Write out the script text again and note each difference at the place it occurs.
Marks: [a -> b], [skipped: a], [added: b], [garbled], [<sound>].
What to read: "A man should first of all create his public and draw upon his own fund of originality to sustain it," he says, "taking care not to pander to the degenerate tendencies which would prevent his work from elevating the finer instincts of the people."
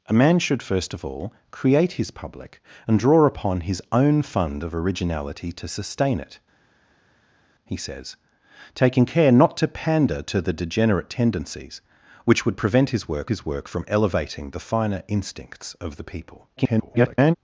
"A man should first of all create his public and draw upon his own fund of originality to sustain it," he says, "taking care not to pander to the degenerate tendencies which would prevent his work [added: his work] from elevating the finer instincts of the people." [garbled]